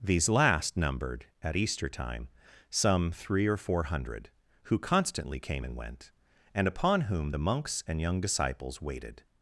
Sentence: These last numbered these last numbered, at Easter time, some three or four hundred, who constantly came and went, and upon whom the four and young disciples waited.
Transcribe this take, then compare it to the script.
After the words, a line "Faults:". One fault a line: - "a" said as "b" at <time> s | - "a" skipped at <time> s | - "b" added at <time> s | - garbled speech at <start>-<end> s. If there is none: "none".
These last numbered, at Easter time, some three or four hundred, who constantly came and went, and upon whom the monks and young disciples waited.
Faults:
- "these last numbered" skipped at 1.3 s
- "four" said as "monks" at 7.4 s